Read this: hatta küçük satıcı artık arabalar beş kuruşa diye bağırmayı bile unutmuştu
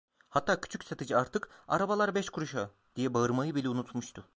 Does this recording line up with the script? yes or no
yes